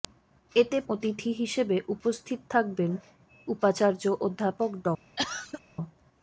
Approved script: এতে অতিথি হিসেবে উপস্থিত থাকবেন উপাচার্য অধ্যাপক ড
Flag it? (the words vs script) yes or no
no